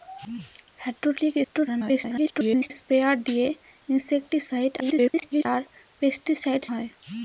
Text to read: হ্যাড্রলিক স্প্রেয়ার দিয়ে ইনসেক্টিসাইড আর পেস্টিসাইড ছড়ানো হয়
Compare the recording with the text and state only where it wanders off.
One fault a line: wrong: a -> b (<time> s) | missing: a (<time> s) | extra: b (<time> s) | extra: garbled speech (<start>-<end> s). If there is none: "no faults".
extra: garbled speech (1.4-2.7 s)
extra: garbled speech (4.8-5.5 s)
missing: ছড়ানো (6.6 s)